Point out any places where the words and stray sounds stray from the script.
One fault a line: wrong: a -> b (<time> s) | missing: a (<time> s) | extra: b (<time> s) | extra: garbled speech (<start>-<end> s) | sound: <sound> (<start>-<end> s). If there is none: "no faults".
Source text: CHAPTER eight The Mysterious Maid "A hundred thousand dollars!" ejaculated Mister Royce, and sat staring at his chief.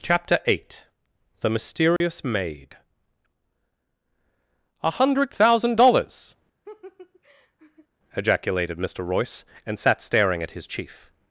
sound: dropout (2.0-2.0 s)
sound: laugh (6.6-7.9 s)